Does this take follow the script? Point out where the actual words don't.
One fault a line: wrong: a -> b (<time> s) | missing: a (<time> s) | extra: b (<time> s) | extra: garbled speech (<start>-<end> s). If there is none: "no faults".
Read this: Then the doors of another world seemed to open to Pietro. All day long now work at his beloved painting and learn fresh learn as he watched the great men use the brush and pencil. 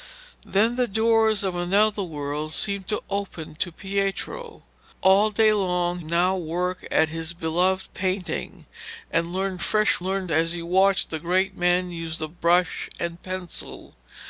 no faults